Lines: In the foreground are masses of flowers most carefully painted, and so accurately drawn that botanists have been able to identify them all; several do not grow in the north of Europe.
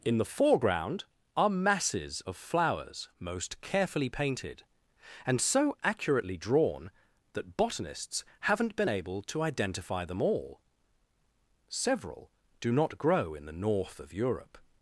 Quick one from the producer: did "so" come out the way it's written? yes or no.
yes